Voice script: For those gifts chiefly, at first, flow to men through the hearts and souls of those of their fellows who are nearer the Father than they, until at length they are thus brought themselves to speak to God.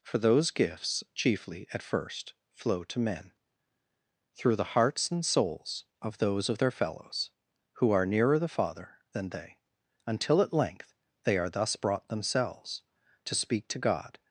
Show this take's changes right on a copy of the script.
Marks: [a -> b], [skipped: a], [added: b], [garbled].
For those gifts chiefly, at first, flow to men through the hearts and souls of those of their fellows who are nearer the Father than they, until at length they are thus brought themselves to speak to God.